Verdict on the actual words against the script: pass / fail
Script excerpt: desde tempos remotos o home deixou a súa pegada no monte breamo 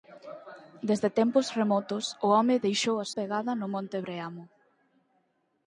fail